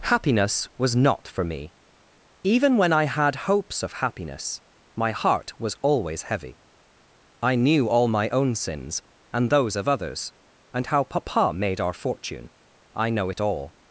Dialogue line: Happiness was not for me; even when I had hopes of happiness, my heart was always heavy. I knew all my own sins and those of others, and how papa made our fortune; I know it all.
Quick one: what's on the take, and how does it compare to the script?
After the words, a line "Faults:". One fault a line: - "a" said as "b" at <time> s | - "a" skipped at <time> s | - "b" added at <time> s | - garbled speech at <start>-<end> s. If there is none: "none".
Happiness was not for me; even when I had hopes of happiness, my heart was always heavy. I knew all my own sins and those of others, and how papa made our fortune; I know it all.
Faults:
none